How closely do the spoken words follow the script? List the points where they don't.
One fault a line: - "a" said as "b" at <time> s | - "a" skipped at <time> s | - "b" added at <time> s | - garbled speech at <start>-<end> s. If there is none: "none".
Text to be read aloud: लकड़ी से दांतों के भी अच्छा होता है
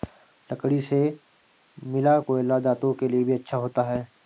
- "मिला कोयला" added at 1.8 s
- "लिए" added at 3.1 s